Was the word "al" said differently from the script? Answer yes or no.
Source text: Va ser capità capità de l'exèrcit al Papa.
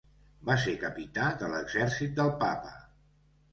yes